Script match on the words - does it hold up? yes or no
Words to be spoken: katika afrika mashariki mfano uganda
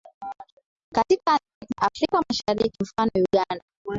yes